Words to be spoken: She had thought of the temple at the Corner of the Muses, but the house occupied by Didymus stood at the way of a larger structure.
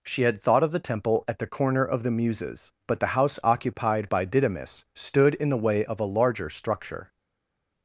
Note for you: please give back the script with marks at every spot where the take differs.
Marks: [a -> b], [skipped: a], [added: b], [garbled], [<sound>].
She had thought of the temple at the Corner of the Muses, but the house occupied by Didymus stood [at -> in] the way of a larger structure.